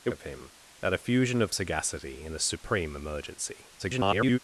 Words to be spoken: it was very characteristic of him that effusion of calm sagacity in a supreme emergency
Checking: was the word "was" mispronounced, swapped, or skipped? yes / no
yes